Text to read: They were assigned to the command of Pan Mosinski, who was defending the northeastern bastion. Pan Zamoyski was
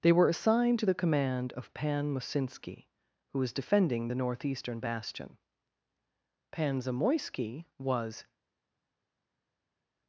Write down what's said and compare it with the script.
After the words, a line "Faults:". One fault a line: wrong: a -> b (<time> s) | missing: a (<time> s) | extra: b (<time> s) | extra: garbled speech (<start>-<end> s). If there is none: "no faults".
They were assigned to the command of Pan Mosinski, who was defending the northeastern bastion. Pan Zamoyski was
Faults:
no faults